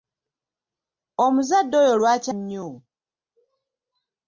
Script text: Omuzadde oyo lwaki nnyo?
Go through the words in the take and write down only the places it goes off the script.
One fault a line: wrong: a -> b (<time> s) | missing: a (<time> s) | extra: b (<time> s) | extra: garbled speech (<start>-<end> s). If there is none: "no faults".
no faults